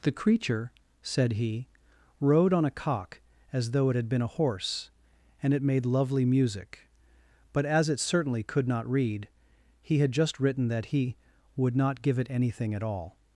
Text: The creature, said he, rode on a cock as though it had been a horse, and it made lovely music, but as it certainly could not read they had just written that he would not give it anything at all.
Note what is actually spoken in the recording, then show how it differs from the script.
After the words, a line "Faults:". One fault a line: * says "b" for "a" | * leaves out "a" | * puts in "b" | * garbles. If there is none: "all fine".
The creature, said he, rode on a cock as though it had been a horse, and it made lovely music, but as it certainly could not read he had just written that he would not give it anything at all.
Faults:
* says "he" for "they"